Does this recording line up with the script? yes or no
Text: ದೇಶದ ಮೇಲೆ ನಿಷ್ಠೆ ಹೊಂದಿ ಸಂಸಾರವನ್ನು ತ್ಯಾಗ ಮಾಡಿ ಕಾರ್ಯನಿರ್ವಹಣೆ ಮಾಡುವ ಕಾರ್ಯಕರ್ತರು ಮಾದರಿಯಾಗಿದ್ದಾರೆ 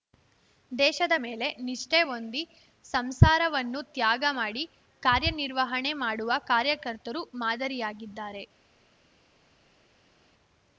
yes